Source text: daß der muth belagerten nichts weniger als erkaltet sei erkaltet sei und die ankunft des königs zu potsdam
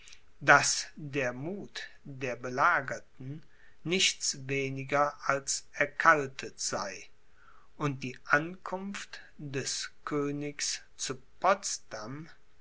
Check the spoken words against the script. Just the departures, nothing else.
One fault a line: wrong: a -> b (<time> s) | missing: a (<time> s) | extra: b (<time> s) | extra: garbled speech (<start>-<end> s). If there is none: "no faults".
extra: der (2.0 s)
missing: erkaltet sei (7.1 s)